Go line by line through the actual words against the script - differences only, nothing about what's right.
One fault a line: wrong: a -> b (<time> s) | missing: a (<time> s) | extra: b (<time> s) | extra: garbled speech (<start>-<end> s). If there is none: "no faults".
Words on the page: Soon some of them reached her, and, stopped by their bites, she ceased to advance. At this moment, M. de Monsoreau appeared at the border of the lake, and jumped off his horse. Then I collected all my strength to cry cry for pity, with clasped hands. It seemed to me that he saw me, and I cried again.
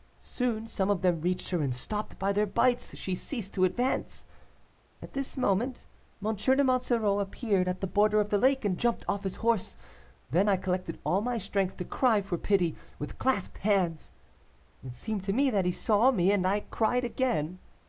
missing: cry (12.2 s)